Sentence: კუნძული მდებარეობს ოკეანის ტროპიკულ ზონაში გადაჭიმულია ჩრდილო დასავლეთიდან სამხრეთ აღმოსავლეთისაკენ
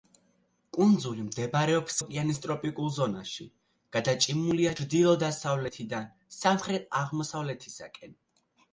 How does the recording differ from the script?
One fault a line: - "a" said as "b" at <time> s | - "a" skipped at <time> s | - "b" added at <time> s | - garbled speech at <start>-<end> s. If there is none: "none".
none